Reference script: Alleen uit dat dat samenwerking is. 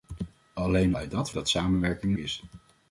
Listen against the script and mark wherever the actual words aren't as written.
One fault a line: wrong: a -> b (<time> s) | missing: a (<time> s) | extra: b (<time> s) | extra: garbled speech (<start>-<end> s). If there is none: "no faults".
no faults